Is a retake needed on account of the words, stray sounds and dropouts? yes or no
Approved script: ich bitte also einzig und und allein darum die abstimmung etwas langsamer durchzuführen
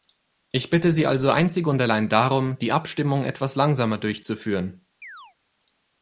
yes